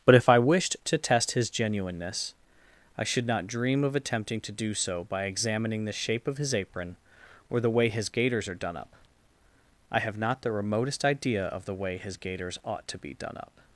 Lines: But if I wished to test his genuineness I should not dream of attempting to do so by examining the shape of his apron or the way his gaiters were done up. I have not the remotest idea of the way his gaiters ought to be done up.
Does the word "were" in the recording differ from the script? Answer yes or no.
yes